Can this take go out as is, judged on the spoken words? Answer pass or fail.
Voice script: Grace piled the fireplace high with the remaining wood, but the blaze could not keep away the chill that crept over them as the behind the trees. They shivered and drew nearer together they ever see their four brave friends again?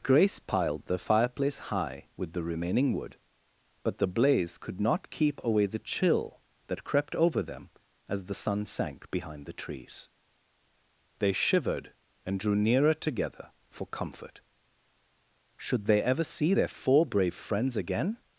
fail